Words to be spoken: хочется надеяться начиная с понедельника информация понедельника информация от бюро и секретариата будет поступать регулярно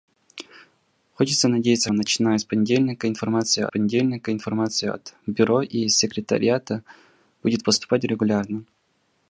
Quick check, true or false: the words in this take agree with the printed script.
true